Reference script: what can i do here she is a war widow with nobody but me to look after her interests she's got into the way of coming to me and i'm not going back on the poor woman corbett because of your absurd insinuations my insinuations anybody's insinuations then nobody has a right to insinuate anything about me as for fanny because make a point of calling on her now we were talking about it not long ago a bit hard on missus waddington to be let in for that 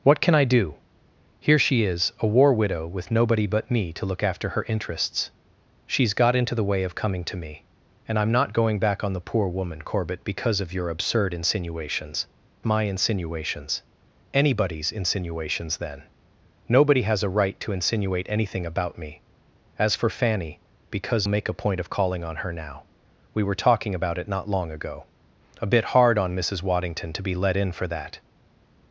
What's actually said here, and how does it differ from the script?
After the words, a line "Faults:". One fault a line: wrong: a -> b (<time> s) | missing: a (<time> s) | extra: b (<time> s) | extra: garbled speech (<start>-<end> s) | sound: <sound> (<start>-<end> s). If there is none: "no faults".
what can i do here she is a war widow with nobody but me to look after her interests she's got into the way of coming to me and i'm not going back on the poor woman corbett because of your absurd insinuations my insinuations anybody's insinuations then nobody has a right to insinuate anything about me as for fanny because make a point of calling on her now we were talking about it not long ago a bit hard on missus waddington to be let in for that
Faults:
no faults